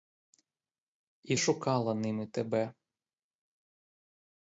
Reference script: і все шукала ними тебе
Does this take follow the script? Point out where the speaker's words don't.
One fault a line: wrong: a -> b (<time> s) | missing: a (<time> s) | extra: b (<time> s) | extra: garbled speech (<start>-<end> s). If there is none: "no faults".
missing: все (1.4 s)